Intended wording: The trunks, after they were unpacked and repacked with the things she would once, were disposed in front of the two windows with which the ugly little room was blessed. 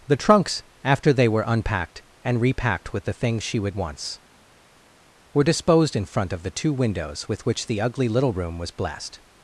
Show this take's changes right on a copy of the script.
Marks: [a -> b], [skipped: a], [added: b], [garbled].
The trunks, after they were unpacked and repacked with the things she would once, were disposed in front of the two windows with which the ugly little room was blessed.